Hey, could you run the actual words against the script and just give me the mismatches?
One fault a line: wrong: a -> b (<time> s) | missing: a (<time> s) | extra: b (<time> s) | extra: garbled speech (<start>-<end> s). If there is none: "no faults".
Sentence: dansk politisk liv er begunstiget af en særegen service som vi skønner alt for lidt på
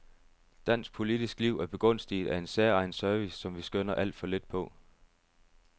no faults